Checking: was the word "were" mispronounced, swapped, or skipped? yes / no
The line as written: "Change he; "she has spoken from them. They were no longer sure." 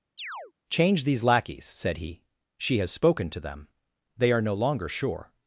yes